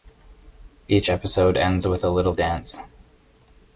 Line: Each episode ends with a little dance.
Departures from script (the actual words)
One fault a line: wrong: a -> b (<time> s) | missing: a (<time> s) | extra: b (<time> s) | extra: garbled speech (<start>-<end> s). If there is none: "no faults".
no faults